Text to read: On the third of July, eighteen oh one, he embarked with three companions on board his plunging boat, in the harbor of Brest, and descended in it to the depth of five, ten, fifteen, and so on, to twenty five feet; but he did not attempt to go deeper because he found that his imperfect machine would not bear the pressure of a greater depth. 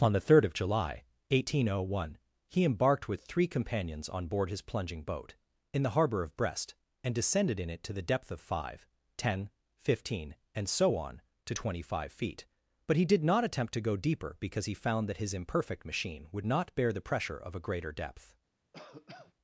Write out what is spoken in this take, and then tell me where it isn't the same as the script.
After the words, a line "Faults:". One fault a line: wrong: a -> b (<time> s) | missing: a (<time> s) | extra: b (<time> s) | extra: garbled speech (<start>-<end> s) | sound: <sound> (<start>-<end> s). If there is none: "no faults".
On the third of July, eighteen oh one, he embarked with three companions on board his plunging boat, in the harbor of Brest, and descended in it to the depth of five, ten, fifteen, and so on, to twenty five feet; but he did not attempt to go deeper because he found that his imperfect machine would not bear the pressure of a greater depth.
Faults:
sound: cough (18.7-19.3 s)